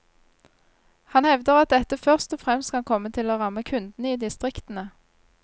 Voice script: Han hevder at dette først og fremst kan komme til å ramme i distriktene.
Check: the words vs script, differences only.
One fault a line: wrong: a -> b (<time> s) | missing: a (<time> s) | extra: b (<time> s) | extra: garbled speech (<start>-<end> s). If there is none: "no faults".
extra: kundene (3.6 s)